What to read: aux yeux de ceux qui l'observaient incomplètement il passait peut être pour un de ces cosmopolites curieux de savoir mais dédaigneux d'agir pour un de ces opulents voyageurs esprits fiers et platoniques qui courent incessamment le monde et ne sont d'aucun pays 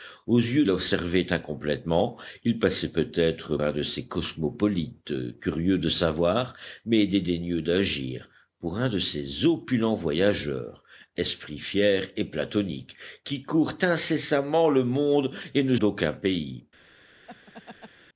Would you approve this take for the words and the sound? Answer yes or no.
no